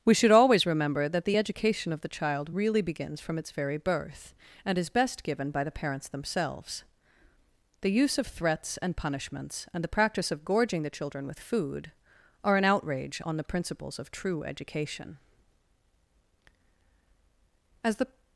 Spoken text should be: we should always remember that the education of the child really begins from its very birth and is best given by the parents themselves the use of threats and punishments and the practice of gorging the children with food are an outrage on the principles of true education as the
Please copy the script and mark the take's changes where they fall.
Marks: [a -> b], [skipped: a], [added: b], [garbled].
we should always remember that the education of the child really begins from its very birth and is best given by the parents themselves the use of threats and punishments and the practice of gorging the children with food are an outrage on the principles of true education as the